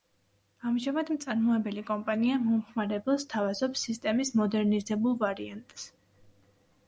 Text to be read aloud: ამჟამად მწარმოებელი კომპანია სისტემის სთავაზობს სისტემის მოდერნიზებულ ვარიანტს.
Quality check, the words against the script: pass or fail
fail